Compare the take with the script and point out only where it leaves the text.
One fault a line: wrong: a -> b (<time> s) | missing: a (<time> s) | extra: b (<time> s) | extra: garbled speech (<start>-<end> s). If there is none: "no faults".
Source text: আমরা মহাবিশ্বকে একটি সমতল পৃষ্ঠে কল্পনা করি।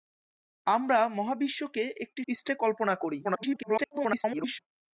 missing: সমতল (2.2 s)
extra: garbled speech (3.2-4.6 s)